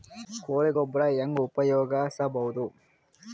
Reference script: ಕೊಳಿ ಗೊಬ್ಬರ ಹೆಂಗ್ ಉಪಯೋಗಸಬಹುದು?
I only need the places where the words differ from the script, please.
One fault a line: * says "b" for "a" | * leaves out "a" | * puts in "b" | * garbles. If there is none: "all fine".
all fine